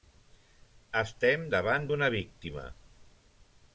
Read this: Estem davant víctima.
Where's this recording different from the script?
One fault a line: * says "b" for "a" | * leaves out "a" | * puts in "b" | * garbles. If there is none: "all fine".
* puts in "d'una"